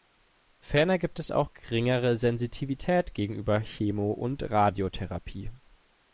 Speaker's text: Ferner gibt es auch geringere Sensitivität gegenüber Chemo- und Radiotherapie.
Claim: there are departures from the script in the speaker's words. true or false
false